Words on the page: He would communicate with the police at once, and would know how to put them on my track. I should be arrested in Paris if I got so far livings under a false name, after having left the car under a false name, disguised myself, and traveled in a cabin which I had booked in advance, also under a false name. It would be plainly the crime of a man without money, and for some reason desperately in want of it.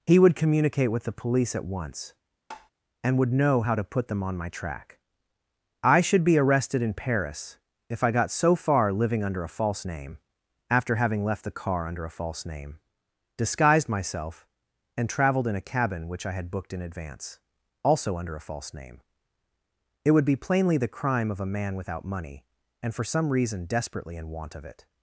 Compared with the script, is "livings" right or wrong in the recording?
wrong